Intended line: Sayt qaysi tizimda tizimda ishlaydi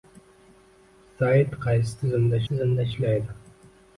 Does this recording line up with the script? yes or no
yes